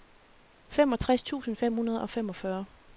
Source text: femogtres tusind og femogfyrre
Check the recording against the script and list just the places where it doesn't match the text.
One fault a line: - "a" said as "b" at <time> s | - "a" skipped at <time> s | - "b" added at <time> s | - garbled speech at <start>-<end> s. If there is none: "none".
- "fem hundrede" added at 1.6 s